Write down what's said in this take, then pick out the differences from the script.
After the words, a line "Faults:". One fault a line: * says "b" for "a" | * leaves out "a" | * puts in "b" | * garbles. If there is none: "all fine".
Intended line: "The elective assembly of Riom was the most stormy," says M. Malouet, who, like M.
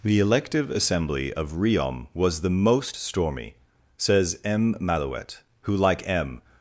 "The elective assembly of Riom was the most stormy," says M. Malouet, who, like M.
Faults:
all fine